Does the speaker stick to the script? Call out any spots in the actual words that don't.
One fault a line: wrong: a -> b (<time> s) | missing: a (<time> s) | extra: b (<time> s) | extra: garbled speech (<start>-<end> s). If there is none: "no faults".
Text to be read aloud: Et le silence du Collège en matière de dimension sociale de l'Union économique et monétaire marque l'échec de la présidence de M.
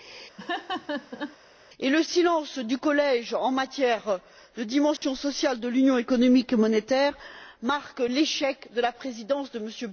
no faults